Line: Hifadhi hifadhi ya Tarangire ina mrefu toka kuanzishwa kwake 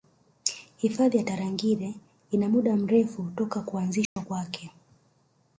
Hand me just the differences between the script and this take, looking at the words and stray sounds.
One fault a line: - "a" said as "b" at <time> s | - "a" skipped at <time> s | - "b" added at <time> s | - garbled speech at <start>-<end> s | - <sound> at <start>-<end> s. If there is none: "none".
- "hifadhi" skipped at 1.2 s
- "muda" added at 2.5 s
- dropout at 4.1-4.2 s